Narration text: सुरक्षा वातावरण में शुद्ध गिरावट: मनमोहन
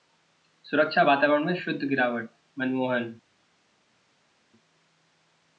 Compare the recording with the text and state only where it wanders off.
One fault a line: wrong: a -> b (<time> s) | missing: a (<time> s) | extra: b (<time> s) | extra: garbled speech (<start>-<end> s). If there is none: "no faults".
no faults